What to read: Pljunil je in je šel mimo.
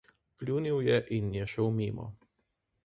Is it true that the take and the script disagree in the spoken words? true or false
false